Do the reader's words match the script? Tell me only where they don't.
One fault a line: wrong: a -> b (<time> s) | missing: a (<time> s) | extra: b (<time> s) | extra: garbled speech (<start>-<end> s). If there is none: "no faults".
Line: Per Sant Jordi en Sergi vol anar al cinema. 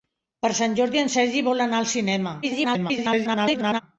extra: garbled speech (2.4-3.8 s)